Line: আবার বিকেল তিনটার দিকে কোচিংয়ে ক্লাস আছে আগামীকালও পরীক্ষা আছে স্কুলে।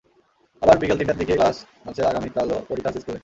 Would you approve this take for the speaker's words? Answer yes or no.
no